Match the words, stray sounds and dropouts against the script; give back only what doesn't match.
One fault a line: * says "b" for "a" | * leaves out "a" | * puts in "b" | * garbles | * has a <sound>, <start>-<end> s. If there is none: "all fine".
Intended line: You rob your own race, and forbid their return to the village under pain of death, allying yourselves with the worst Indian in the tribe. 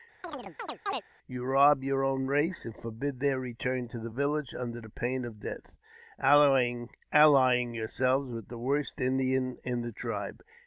* has a chirp, 0.2-1.0 s